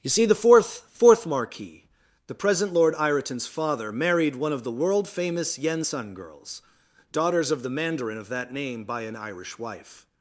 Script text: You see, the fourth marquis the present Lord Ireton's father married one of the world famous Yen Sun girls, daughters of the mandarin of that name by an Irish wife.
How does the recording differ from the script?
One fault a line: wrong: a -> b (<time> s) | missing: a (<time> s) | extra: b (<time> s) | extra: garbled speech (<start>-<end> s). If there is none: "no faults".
extra: fourth (0.9 s)